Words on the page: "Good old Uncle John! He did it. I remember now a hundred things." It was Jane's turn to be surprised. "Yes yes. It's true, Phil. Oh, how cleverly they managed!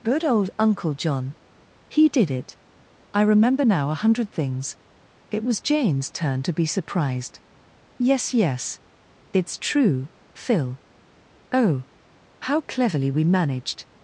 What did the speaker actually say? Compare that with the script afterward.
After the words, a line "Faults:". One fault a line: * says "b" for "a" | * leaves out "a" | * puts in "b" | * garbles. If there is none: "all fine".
"Good old Uncle John! He did it. I remember now a hundred things." It was Jane's turn to be surprised. "Yes yes. It's true, Phil. Oh, how cleverly we managed!
Faults:
* says "we" for "they"